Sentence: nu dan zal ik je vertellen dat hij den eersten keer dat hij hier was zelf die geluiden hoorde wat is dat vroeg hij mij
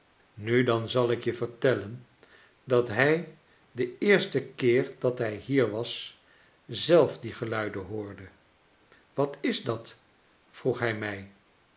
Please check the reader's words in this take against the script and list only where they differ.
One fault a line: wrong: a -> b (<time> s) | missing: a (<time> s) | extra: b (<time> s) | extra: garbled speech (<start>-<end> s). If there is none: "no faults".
no faults